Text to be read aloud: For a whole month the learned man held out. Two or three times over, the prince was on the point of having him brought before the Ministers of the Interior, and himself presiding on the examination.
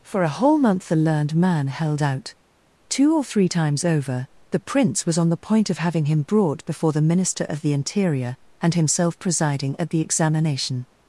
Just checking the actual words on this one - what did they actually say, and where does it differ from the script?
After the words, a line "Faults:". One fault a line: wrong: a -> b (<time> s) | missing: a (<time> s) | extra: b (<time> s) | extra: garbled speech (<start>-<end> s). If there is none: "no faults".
For a whole month the learned man held out. Two or three times over, the prince was on the point of having him brought before the Minister of the Interior, and himself presiding at the examination.
Faults:
wrong: Ministers -> Minister (7.0 s)
wrong: on -> at (9.8 s)